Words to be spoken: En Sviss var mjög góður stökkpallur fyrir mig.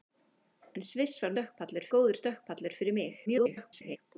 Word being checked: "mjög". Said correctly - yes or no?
no